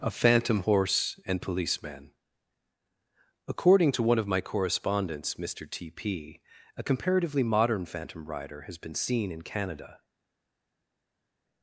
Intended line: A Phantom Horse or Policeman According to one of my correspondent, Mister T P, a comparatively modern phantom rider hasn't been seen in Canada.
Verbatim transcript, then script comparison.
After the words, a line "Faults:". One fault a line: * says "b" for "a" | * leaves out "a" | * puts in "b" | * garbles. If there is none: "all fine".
A Phantom Horse and Policeman According to one of my correspondents, Mister T P, a comparatively modern phantom rider has been seen in Canada.
Faults:
* says "and" for "or"
* says "correspondents" for "correspondent"
* says "has" for "hasn't"